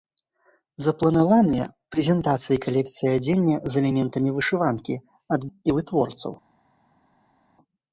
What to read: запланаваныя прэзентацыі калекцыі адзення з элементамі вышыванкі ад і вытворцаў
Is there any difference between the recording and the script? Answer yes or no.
no